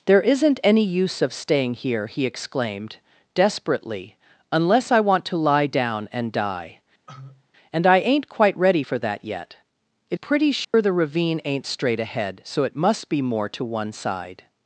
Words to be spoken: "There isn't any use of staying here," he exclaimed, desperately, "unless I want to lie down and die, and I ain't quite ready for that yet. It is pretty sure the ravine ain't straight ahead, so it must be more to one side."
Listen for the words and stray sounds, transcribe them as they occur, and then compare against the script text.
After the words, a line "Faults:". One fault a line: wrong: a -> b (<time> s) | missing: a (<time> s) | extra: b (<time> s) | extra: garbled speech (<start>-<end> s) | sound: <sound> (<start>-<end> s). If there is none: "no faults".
"There isn't any use of staying here," he exclaimed, desperately, "unless I want to lie down and die, and I ain't quite ready for that yet. It pretty sure the ravine ain't straight ahead, so it must be more to one side."
Faults:
sound: cough (7.1-7.5 s)
missing: is (10.2 s)
sound: dropout (10.6-10.7 s)